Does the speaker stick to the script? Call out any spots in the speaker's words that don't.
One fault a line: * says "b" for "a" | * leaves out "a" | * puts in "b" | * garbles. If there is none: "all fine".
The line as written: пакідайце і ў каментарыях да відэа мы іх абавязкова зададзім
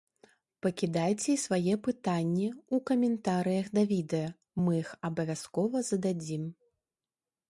* puts in "свае пытанні"